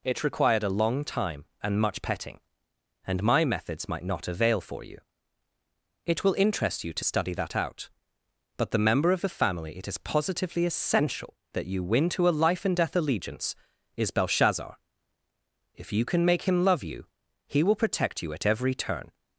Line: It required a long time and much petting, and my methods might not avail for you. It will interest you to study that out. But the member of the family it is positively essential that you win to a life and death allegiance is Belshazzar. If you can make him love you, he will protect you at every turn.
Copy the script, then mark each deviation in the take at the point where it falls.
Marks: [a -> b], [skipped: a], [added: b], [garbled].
It required a long time and much petting, and my methods might not avail for you. It will interest you to study that out. But the member of the family it is positively essential that you win to a life and death allegiance is Belshazzar. If you can make him love you, he will protect you at every turn.